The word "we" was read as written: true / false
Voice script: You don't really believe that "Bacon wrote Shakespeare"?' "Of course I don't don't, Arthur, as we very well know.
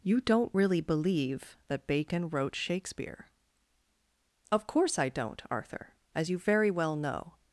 false